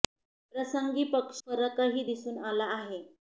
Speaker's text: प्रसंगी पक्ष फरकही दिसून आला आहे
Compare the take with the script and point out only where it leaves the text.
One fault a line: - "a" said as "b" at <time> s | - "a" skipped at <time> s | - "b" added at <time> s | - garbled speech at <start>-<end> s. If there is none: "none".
none